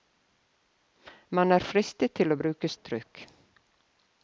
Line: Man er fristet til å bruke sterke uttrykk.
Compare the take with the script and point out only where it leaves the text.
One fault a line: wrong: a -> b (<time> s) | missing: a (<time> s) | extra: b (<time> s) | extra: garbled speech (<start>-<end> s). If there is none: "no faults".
missing: sterke (2.7 s)